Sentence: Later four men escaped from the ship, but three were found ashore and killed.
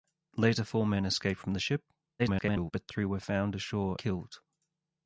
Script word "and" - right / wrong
wrong